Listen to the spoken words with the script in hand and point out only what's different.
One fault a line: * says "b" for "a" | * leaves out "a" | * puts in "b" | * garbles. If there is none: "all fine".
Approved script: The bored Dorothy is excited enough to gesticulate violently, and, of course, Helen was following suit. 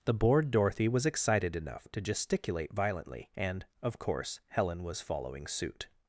* says "was" for "is"